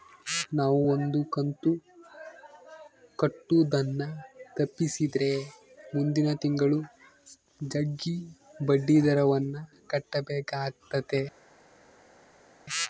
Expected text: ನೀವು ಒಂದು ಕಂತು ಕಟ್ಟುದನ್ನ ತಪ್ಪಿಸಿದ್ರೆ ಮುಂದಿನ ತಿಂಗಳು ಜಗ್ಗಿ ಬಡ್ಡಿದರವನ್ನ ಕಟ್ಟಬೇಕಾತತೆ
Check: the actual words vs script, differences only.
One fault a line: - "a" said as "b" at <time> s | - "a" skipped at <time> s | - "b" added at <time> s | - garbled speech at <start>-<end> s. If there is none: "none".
- "ನೀವು" said as "ನಾವು" at 0.6 s